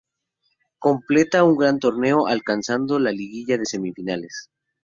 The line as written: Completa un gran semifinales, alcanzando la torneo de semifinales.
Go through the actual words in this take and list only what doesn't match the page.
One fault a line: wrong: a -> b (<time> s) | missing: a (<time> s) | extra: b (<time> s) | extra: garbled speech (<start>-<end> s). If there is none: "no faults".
wrong: semifinales -> torneo (1.8 s)
wrong: torneo -> liguilla (3.1 s)